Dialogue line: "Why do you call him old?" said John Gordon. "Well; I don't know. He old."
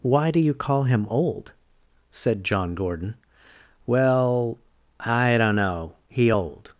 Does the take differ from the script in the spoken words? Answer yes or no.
no